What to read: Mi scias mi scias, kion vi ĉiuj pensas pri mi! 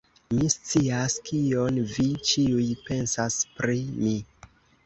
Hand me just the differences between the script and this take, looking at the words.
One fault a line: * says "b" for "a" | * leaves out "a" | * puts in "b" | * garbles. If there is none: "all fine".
* leaves out "mi scias"